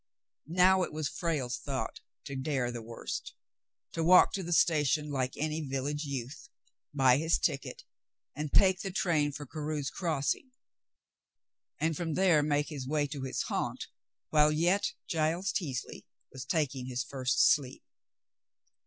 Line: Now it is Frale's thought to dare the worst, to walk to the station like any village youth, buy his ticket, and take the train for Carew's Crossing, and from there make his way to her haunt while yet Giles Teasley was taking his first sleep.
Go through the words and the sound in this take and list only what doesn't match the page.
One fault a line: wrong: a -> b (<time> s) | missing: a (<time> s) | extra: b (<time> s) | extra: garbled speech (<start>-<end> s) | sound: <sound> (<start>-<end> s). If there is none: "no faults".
wrong: is -> was (0.9 s)
wrong: her -> his (13.2 s)